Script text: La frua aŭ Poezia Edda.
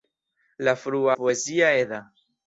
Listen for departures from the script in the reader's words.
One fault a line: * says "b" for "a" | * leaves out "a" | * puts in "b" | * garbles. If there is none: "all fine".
* leaves out "aŭ"